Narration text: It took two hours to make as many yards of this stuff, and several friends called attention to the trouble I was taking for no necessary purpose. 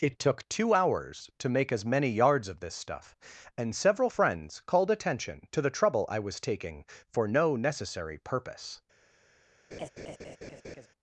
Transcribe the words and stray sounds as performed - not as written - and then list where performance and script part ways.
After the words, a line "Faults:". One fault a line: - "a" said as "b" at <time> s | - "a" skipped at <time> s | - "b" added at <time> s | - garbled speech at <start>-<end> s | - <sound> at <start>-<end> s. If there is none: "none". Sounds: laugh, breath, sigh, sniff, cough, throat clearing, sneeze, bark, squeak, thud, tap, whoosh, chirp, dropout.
It took two hours to make as many yards of this stuff, and several friends called attention to the trouble I was taking for no necessary purpose.
Faults:
- laugh at 9.7-10.9 s